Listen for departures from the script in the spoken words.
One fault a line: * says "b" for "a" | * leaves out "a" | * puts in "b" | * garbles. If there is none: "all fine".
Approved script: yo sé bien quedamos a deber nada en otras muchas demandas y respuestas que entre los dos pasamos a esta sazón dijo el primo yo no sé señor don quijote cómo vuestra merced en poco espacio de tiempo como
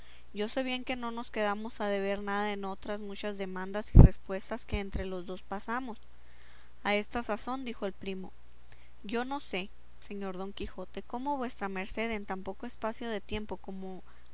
* puts in "que no nos"
* puts in "tan"